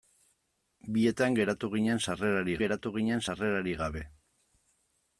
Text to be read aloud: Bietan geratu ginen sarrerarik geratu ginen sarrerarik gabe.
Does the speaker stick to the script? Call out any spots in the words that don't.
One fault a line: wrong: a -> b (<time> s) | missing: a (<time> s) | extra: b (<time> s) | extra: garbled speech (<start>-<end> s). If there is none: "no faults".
no faults